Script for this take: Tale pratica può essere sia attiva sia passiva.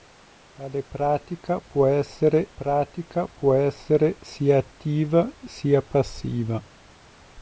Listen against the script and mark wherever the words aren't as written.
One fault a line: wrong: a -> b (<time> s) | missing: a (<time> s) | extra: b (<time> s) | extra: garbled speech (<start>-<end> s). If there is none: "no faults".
extra: pratica può essere (2.5 s)